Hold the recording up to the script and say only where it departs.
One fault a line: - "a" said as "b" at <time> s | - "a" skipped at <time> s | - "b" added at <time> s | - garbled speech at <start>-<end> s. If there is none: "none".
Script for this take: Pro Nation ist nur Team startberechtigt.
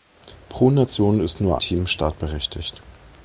none